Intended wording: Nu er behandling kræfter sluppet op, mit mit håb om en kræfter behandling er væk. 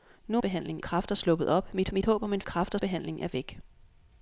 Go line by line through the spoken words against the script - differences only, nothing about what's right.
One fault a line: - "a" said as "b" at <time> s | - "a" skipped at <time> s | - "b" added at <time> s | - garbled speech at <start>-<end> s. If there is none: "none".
none